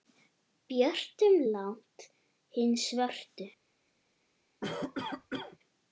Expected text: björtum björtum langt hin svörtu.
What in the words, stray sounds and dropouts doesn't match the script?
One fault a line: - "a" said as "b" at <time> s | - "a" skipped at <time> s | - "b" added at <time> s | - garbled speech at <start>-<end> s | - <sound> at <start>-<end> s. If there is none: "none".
- "björtum" skipped at 1.4 s
- cough at 4.6-5.6 s